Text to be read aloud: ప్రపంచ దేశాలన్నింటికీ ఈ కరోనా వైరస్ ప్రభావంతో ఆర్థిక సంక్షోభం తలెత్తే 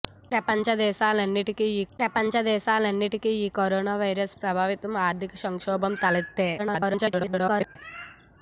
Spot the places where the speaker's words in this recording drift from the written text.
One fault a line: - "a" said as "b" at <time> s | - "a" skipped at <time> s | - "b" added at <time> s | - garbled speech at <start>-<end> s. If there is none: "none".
- "ప్రపంచ దేశాలన్నింటికీ ఈ" added at 2.0 s
- garbled speech at 6.6-7.8 s